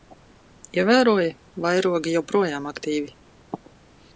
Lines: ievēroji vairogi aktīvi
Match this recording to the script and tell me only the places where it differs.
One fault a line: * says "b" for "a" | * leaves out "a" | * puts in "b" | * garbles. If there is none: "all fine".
* puts in "joprojām"